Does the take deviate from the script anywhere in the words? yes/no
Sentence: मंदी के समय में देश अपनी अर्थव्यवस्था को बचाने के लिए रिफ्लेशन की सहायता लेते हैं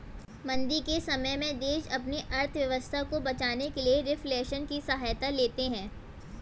no